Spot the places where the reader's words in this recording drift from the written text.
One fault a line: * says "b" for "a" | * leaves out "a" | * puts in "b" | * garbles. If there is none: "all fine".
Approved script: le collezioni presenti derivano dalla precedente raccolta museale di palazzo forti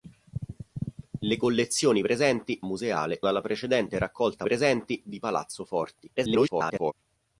* says "museale" for "derivano"
* says "presenti" for "museale"
* garbles